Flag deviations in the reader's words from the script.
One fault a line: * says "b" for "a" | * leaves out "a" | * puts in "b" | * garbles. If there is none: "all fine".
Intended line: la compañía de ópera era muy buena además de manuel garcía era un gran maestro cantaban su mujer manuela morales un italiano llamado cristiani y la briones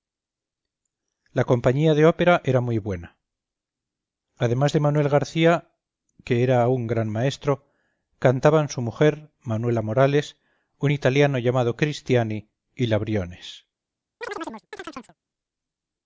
* puts in "que"